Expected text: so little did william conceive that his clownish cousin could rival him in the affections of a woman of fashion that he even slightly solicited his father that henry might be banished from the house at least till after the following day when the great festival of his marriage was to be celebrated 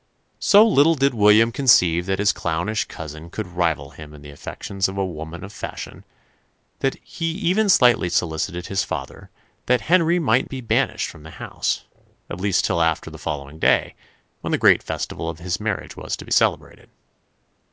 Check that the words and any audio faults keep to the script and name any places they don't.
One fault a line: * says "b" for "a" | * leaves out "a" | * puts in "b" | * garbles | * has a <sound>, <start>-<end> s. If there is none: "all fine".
all fine